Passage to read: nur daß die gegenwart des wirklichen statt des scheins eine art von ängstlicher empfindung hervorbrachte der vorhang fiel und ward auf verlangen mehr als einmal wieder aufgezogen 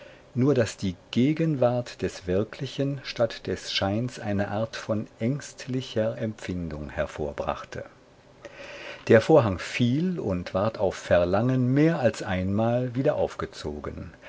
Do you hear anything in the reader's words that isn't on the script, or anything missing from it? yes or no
no